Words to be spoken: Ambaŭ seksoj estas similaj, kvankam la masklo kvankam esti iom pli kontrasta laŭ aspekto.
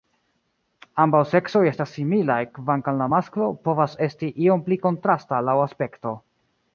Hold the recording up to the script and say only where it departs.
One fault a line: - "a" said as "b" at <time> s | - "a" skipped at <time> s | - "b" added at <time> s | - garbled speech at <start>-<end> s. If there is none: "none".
- "kvankam" said as "povas" at 3.7 s